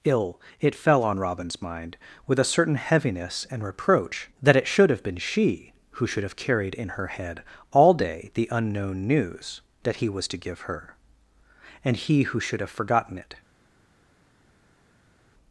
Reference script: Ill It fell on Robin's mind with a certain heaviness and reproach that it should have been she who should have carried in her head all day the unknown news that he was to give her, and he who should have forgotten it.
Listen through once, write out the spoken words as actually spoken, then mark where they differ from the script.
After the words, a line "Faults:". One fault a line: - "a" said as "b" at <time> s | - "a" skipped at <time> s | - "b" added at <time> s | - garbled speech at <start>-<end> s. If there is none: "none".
Ill It fell on Robin's mind with a certain heaviness and reproach that it should have been she who should have carried in her head all day the unknown news that he was to give her, and he who should have forgotten it.
Faults:
none